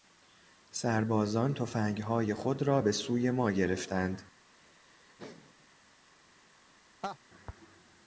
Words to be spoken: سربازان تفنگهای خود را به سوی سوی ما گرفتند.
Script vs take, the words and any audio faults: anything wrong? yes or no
yes